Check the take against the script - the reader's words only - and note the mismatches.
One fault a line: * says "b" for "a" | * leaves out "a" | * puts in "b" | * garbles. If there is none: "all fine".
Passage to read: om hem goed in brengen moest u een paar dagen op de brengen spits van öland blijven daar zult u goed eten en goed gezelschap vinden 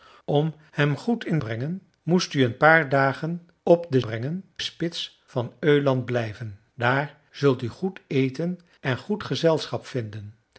all fine